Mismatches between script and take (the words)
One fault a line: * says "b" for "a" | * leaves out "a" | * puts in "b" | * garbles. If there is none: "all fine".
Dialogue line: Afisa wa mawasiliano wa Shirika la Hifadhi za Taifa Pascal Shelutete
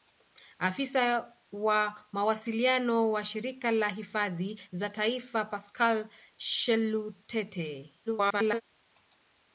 * garbles